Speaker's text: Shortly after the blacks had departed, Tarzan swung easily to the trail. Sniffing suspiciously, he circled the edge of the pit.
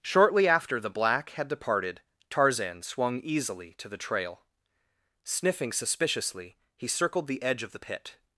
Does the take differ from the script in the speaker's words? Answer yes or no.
yes